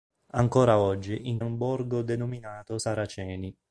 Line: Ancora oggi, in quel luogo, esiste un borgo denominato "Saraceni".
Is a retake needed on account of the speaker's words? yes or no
yes